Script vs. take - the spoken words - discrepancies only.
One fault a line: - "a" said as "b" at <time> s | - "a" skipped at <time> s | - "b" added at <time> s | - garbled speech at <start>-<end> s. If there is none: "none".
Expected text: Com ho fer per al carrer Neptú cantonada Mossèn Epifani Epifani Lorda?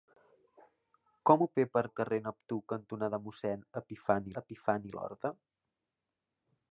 none